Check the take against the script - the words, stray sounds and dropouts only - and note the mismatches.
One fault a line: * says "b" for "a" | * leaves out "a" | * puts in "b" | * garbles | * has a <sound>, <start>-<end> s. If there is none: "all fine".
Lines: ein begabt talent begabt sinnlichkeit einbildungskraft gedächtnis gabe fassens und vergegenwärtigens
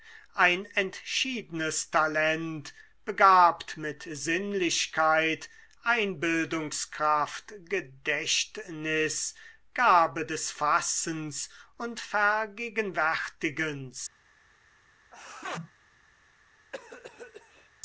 * says "entschiedenes" for "begabt"
* puts in "mit"
* puts in "des"
* has a sneeze, 15.1-15.7 s
* has a cough, 16.7-17.7 s